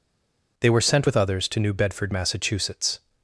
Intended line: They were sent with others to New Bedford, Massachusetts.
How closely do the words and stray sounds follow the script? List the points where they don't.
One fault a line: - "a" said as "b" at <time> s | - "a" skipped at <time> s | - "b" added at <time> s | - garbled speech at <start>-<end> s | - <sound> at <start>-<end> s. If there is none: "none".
none